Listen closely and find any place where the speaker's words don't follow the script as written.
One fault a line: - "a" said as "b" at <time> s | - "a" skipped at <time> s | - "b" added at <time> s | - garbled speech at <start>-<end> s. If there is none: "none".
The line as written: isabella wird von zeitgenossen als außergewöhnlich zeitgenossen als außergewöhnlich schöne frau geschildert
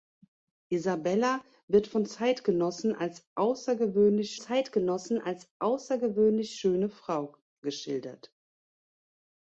none